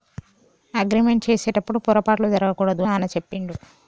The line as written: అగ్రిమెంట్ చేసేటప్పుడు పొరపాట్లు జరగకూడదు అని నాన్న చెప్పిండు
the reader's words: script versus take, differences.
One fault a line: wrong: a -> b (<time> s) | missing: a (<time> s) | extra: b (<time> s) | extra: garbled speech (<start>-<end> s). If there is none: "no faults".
missing: అని (2.9 s)